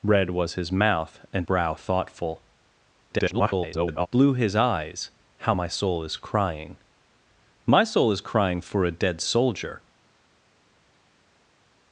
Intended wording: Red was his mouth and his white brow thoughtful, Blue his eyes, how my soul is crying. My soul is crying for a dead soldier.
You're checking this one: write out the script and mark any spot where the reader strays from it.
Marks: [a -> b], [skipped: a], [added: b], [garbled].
Red was his mouth and [skipped: his white] brow thoughtful, [garbled] Blue his eyes, how my soul is crying. My soul is crying for a dead soldier.